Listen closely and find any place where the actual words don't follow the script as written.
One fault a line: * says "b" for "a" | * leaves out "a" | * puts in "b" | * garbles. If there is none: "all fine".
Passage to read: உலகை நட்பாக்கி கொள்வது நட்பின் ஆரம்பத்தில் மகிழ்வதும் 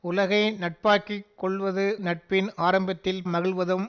all fine